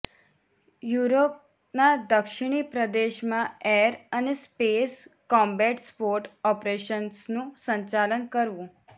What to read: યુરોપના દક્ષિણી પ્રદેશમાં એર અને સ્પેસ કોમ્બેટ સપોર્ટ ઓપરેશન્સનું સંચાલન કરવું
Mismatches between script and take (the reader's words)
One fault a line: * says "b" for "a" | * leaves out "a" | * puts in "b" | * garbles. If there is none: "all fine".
all fine